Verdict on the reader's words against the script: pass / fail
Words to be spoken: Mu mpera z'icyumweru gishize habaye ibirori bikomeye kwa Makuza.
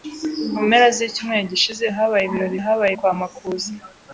fail